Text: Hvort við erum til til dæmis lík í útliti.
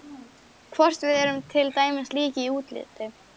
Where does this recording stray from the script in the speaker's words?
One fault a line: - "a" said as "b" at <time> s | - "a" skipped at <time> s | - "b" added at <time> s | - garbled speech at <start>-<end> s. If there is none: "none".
- "til" skipped at 1.7 s